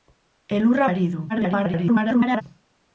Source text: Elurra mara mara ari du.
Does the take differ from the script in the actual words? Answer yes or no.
yes